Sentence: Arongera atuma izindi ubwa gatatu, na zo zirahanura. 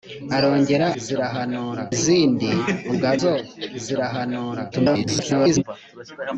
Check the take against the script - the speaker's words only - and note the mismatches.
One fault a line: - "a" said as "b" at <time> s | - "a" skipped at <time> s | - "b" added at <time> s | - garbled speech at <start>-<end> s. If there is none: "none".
- "atuma" said as "zirahanura" at 1.0 s
- "gatatu na" skipped at 3.1 s
- garbled speech at 4.7-5.6 s